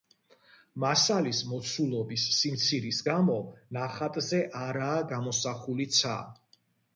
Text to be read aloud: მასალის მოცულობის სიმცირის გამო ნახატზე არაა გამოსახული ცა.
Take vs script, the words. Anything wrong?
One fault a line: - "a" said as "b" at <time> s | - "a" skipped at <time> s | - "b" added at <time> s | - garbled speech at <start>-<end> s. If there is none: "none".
none